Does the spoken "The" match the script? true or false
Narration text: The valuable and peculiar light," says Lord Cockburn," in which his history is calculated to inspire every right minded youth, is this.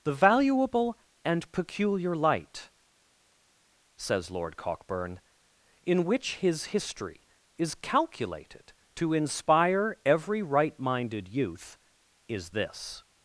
true